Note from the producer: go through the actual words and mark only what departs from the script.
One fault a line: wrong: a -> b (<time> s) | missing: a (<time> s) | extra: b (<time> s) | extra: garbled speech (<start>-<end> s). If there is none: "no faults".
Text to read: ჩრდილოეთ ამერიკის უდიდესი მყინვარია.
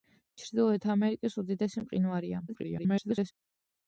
extra: garbled speech (2.5-3.3 s)